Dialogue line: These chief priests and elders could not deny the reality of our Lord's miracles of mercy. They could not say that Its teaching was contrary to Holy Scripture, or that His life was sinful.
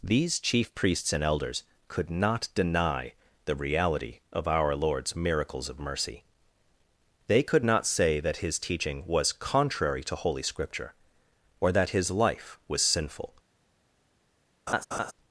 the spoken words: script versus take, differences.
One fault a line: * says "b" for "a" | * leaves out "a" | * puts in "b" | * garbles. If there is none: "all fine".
* says "His" for "Its"